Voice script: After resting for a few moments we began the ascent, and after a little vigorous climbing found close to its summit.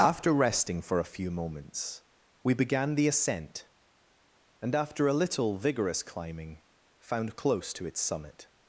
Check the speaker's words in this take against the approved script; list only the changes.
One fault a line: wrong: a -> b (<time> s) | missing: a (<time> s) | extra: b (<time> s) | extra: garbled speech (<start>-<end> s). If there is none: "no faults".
no faults